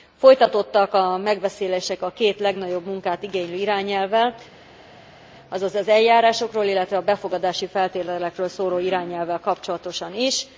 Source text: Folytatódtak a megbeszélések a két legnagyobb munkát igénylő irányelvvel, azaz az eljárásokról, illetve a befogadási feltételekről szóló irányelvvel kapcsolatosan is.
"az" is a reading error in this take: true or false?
false